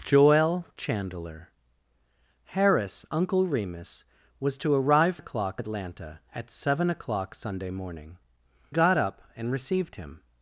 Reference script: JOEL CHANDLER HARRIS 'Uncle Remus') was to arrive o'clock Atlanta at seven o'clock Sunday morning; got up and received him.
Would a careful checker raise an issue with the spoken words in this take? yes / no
no